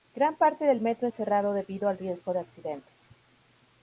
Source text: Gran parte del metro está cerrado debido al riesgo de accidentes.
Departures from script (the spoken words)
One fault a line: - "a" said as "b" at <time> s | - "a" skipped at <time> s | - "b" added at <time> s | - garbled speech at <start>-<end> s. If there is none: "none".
- "está" skipped at 1.1 s